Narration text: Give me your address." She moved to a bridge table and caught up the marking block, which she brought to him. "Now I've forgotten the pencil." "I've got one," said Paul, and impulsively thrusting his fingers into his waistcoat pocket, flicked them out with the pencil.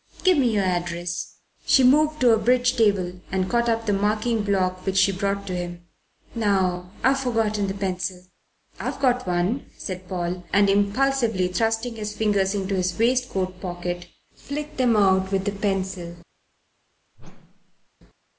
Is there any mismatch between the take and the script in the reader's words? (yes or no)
no